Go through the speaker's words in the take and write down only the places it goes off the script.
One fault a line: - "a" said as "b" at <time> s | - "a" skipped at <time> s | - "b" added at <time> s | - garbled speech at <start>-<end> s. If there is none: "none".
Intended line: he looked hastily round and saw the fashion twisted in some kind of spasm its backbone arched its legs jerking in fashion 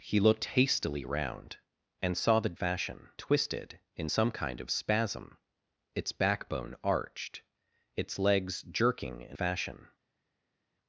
none